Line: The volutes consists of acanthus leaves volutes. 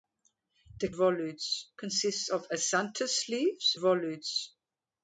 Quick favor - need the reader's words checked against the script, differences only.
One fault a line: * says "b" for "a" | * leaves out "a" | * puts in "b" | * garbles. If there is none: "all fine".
all fine